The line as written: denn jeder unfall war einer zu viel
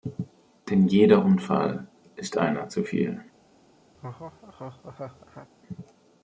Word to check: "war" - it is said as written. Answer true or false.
false